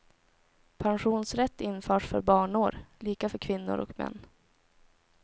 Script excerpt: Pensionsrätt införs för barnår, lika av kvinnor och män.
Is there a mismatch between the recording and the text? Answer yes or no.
yes